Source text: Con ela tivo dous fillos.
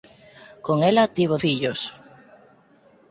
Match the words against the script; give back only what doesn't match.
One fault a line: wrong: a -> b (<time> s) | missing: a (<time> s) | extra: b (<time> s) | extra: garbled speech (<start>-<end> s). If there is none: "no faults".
missing: dous (1.4 s)